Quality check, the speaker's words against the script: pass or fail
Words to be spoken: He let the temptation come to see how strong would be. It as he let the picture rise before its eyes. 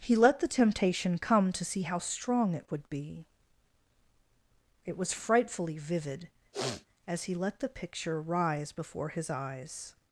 fail